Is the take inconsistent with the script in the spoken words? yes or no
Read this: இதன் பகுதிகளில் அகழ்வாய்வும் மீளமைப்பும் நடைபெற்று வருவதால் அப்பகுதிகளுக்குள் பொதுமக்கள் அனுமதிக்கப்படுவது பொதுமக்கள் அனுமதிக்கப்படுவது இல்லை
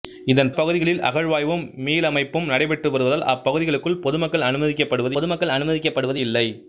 no